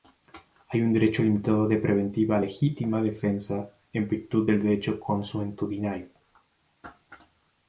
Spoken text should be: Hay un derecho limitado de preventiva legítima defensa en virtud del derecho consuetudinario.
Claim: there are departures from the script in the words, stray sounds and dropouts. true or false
false